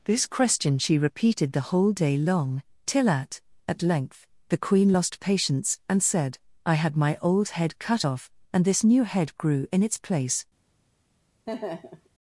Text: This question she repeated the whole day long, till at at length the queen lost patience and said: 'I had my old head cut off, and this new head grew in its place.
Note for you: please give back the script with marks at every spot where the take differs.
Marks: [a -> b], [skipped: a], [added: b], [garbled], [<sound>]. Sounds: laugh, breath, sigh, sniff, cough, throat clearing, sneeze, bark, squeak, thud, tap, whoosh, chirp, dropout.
This question she repeated the whole day long, till at at length the queen lost patience and said: 'I had my old head cut off, and this new head grew in its place. [laugh]